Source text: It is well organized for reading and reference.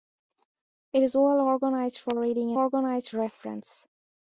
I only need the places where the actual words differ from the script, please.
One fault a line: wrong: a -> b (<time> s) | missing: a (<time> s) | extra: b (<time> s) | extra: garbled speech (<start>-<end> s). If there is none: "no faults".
wrong: and -> organized (2.5 s)